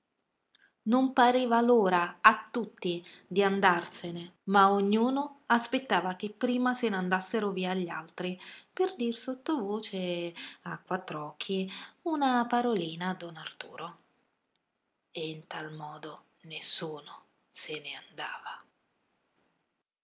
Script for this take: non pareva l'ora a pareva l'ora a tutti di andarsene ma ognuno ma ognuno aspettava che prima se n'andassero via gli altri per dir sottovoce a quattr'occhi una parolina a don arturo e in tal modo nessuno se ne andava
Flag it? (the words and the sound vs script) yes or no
yes